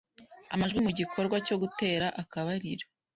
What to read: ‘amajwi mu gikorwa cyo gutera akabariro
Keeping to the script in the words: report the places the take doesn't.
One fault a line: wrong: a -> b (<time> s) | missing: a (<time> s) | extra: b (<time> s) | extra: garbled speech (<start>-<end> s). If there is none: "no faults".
no faults